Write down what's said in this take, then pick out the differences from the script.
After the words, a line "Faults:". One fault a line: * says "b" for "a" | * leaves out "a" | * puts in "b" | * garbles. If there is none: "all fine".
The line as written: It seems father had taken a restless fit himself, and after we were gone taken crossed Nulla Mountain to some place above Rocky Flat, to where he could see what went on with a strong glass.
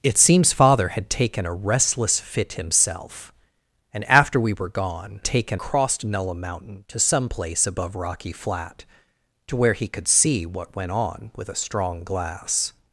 It seems father had taken a restless fit himself, and after we were gone taken crossed Nulla Mountain to some place above Rocky Flat, to where he could see what went on with a strong glass.
Faults:
all fine